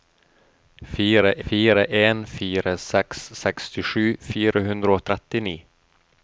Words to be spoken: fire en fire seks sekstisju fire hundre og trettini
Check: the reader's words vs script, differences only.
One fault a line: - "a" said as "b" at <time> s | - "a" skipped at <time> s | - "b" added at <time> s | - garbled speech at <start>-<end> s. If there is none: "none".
- "fire" added at 1.5 s